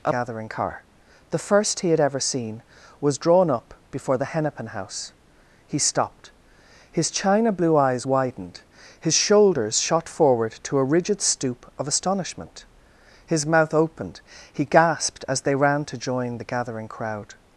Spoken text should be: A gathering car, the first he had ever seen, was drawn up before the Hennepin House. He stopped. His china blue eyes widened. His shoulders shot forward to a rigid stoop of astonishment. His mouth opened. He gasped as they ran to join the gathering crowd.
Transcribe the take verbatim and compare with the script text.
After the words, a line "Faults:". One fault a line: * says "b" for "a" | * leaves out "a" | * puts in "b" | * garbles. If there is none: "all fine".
A gathering car, the first he had ever seen, was drawn up before the Hennepin House. He stopped. His china blue eyes widened. His shoulders shot forward to a rigid stoop of astonishment. His mouth opened. He gasped as they ran to join the gathering crowd.
Faults:
all fine